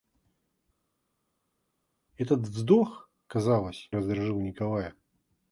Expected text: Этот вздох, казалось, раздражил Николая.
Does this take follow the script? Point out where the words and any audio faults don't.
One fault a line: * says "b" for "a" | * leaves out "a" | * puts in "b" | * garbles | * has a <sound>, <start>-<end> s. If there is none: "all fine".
all fine